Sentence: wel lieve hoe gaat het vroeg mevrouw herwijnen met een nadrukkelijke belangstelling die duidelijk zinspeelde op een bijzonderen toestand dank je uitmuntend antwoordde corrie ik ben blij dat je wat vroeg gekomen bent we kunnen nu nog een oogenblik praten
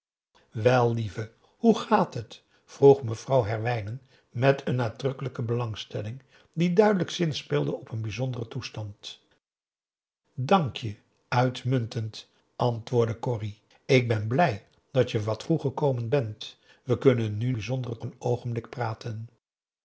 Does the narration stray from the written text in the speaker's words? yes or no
yes